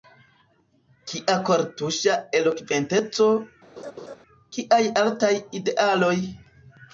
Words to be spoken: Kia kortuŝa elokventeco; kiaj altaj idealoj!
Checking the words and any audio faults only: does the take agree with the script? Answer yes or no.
no